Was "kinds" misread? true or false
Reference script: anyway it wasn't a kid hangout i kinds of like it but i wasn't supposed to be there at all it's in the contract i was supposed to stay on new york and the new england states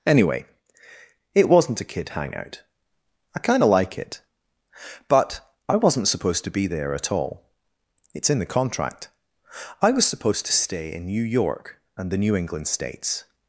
true